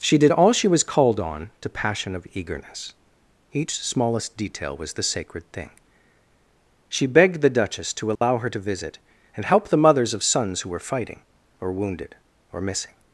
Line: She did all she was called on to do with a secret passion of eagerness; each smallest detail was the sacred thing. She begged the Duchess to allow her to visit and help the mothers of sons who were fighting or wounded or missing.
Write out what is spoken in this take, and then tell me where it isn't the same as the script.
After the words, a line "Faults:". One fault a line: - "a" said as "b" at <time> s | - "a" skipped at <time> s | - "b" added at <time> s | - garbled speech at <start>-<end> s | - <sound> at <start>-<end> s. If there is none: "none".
She did all she was called on to passion of eagerness; each smallest detail was the sacred thing. She begged the Duchess to allow her to visit and help the mothers of sons who were fighting or wounded or missing.
Faults:
- "do with a secret" skipped at 1.7 s
- dropout at 8.2-8.2 s